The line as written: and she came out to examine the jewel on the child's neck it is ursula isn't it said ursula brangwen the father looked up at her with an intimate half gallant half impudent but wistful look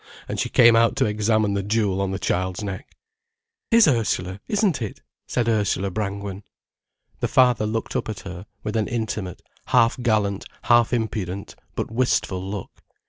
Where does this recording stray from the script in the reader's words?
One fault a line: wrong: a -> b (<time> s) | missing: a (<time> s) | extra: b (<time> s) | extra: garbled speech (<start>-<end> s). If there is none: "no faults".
missing: it (3.0 s)